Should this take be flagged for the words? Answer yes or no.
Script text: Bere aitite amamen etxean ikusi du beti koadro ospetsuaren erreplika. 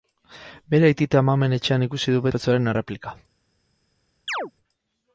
yes